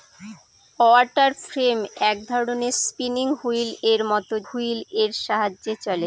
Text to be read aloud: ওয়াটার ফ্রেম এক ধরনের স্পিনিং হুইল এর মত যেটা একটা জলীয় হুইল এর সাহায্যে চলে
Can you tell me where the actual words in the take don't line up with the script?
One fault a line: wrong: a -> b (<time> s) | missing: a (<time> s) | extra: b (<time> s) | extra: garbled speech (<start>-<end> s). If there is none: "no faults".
missing: যেটা একটা জলীয় (4.3 s)